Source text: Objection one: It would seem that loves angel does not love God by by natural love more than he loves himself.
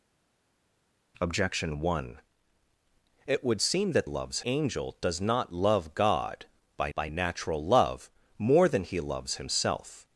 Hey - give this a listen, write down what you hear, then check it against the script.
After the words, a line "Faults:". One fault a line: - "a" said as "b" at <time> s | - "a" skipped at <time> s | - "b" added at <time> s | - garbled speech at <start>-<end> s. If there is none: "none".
Objection one: It would seem that loves angel does not love God by by natural love more than he loves himself.
Faults:
none